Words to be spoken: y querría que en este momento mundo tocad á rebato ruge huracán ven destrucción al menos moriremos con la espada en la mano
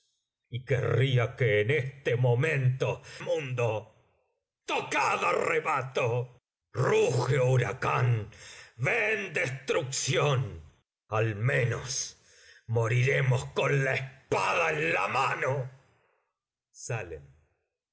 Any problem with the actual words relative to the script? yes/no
no